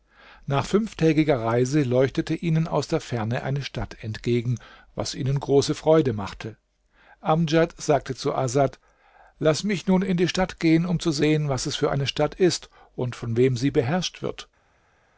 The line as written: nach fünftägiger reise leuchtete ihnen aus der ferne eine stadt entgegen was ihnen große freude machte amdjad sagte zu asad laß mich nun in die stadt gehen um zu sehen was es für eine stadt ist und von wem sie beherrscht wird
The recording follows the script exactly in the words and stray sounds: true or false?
true